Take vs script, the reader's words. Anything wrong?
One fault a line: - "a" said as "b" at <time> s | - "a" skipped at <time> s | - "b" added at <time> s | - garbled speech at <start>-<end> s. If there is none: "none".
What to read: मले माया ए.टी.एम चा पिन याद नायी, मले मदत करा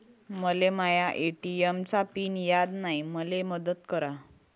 none